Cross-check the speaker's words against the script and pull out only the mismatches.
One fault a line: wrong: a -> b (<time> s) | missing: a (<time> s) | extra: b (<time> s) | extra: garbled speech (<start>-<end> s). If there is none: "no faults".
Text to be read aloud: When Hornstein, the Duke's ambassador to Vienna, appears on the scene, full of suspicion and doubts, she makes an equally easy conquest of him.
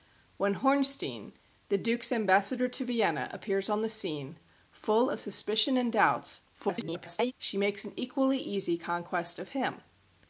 extra: garbled speech (6.5-7.3 s)